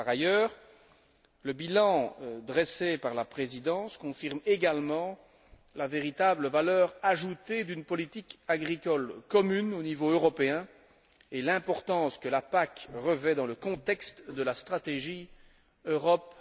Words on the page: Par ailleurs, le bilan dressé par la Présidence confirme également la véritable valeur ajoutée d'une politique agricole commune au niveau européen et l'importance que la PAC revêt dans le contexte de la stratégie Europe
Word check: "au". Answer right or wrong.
right